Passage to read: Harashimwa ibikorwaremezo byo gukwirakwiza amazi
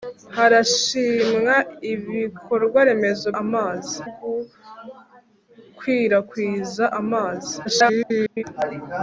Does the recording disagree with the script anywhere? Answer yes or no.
yes